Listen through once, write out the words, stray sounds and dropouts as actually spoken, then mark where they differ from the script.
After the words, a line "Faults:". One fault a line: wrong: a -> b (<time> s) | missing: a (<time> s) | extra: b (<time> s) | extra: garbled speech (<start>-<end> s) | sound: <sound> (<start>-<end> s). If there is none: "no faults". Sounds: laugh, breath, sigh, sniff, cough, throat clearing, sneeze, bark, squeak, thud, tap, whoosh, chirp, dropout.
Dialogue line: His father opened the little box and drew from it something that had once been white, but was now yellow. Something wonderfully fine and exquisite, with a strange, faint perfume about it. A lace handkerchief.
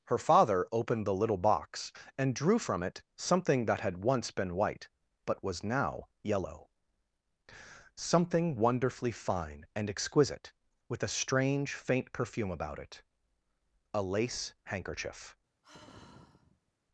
Her father opened the little box and drew from it something that had once been white, but was now yellow. Something wonderfully fine and exquisite, with a strange, faint perfume about it. A lace handkerchief.
Faults:
wrong: His -> Her (0.1 s)
sound: sigh (15.6-16.7 s)